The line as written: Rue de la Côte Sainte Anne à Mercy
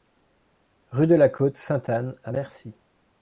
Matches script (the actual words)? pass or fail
pass